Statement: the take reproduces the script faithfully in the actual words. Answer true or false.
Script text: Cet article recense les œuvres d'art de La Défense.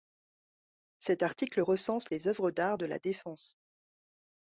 true